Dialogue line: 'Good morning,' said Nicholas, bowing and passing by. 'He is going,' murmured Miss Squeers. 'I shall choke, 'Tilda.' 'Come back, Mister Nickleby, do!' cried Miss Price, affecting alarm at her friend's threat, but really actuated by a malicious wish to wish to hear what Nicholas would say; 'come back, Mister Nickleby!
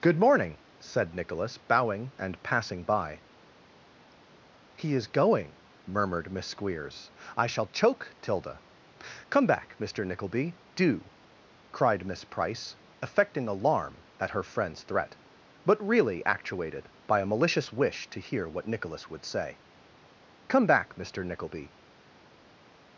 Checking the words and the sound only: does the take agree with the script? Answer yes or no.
no